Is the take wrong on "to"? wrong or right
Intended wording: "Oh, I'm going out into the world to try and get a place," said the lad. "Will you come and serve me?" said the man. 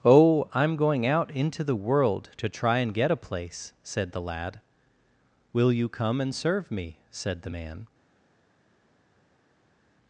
right